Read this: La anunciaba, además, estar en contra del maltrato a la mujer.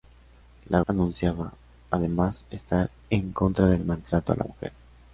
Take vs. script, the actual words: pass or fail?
pass